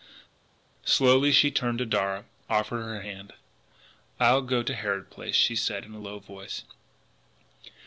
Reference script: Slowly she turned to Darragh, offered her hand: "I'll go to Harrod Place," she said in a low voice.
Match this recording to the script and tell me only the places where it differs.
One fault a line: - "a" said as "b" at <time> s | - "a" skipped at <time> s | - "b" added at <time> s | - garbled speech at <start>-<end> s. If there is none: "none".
none